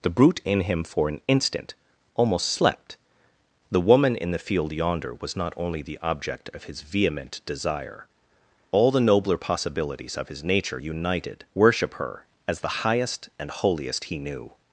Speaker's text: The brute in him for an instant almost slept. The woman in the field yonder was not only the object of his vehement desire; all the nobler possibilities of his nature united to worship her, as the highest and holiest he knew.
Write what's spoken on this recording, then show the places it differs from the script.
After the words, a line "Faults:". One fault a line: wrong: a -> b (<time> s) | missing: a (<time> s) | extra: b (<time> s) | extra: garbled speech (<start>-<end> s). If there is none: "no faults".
The brute in him for an instant almost slept. The woman in the field yonder was not only the object of his vehement desire; all the nobler possibilities of his nature united worship her, as the highest and holiest he knew.
Faults:
missing: to (11.4 s)